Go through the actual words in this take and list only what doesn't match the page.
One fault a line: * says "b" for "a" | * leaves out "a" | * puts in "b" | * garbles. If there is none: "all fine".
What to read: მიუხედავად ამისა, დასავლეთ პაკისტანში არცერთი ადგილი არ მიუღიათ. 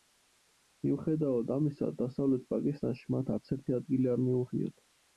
* puts in "მათ"